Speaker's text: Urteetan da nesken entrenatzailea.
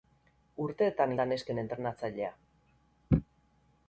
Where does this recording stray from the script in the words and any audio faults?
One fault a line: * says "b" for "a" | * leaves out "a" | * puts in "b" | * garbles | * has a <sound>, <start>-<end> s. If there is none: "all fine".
all fine